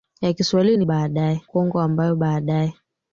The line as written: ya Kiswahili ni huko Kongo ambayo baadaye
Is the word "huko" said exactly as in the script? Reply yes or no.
no